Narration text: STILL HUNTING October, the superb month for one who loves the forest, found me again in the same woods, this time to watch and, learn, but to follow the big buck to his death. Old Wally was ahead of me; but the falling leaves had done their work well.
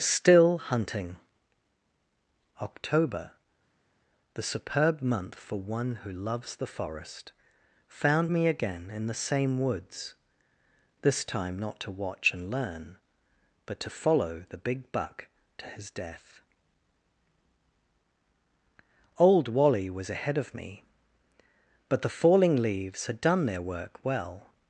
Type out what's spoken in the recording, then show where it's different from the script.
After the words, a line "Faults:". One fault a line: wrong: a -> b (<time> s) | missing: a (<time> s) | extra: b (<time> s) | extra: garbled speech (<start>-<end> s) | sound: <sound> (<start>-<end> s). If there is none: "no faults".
STILL HUNTING October, the superb month for one who loves the forest, found me again in the same woods, this time not to watch and, learn, but to follow the big buck to his death. Old Wally was ahead of me; but the falling leaves had done their work well.
Faults:
extra: not (11.6 s)